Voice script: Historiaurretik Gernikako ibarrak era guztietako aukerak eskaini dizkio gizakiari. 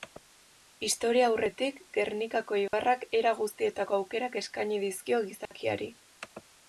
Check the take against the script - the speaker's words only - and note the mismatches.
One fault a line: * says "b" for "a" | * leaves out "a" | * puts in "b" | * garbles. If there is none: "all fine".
all fine